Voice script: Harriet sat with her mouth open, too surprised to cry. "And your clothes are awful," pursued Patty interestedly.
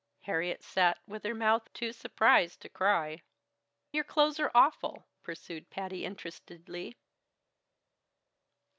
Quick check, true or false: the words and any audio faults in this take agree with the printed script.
false